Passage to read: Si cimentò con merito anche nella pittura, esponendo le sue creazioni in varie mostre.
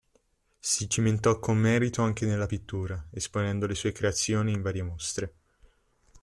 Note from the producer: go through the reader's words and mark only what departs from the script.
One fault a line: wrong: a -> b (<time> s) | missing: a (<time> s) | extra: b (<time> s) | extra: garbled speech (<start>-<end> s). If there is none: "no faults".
no faults